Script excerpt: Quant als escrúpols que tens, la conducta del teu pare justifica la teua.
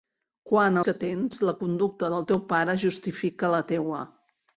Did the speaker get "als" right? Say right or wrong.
wrong